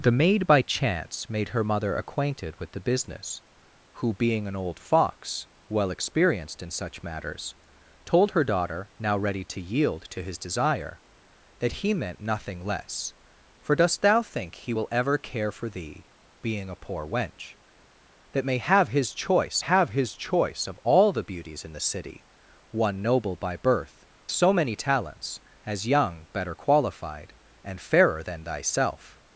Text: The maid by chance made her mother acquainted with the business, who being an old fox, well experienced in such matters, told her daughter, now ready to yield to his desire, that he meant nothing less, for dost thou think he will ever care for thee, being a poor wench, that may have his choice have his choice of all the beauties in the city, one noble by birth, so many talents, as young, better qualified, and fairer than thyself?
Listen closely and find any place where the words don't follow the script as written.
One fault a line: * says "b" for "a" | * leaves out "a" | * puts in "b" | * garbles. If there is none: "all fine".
all fine